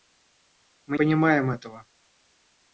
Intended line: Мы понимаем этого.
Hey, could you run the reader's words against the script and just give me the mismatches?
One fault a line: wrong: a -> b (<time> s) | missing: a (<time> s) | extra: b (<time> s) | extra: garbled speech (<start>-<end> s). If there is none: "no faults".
no faults